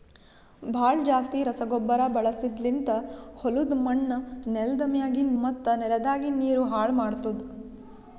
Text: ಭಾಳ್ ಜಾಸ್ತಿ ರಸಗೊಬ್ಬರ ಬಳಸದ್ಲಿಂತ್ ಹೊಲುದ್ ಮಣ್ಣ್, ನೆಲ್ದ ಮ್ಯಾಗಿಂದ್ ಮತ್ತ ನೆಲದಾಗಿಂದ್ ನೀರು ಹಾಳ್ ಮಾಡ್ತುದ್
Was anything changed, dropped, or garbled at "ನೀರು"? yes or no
no